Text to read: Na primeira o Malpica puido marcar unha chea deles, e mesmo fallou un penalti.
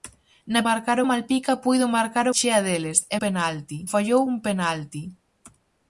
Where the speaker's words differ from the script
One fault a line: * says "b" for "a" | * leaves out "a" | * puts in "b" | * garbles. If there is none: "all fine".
* says "marcar" for "primeira"
* leaves out "unha"
* says "penalti" for "mesmo"